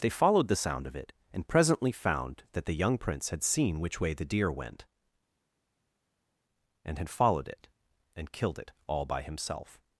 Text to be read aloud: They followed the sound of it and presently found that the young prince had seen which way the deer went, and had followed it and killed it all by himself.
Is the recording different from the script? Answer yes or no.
no